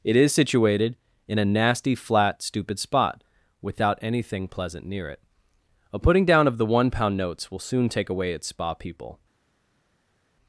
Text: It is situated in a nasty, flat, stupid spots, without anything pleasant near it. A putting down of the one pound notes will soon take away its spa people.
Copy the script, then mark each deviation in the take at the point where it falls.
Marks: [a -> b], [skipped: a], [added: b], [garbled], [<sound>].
It is situated in a nasty, flat, stupid [spots, -> spot] without anything pleasant near it. A putting down of the one pound notes will soon take away its spa people.